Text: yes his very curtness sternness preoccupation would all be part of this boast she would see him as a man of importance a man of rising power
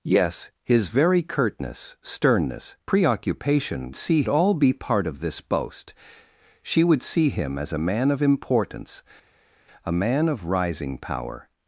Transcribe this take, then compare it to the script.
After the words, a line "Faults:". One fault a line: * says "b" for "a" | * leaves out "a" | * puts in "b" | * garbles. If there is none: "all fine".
yes his very curtness sternness preoccupation see all be part of this boast she would see him as a man of importance a man of rising power
Faults:
* says "see" for "would"